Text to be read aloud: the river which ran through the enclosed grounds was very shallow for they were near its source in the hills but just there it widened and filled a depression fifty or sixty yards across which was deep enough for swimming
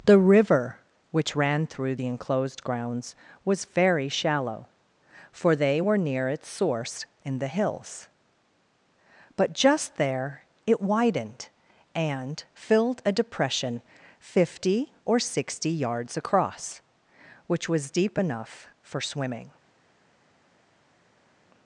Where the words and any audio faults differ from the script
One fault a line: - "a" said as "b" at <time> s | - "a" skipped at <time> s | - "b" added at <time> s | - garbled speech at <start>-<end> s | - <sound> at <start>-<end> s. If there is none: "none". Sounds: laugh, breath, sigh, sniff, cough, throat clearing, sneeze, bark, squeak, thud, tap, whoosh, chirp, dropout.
none